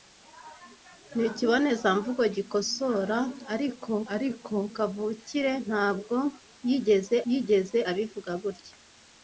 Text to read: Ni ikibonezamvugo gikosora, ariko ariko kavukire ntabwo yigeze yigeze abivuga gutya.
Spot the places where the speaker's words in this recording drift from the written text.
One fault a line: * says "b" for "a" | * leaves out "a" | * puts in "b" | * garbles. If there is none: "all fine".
all fine